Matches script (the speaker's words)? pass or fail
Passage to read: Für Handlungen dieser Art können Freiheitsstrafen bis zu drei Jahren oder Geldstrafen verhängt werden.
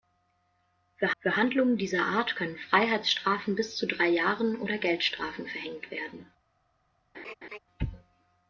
fail